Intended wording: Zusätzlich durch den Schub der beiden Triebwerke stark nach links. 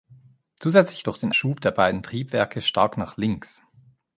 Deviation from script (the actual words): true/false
false